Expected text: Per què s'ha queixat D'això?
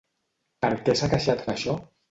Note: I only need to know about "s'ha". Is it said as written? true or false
true